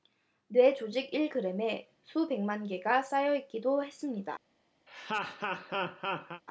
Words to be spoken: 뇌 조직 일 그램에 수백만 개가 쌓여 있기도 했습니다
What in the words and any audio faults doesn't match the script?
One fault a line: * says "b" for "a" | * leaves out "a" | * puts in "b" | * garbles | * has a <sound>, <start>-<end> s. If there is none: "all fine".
* has a laugh, 4.9-6.4 s